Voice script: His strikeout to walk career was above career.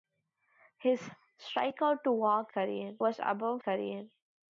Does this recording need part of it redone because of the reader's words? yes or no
no